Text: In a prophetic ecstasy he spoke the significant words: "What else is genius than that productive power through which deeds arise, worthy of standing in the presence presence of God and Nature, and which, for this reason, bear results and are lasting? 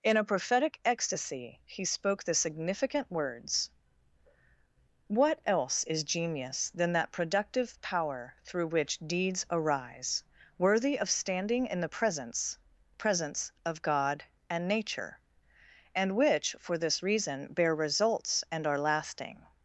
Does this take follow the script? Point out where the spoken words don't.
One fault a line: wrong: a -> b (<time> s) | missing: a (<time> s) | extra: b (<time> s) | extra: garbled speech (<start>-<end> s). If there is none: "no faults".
no faults